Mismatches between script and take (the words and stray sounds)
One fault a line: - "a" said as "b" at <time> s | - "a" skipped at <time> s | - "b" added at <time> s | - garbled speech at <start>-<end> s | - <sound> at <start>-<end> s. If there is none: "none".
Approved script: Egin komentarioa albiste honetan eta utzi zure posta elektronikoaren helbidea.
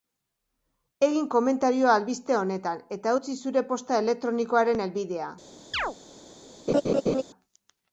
- chirp at 5.7-6.0 s
- laugh at 6.7-7.2 s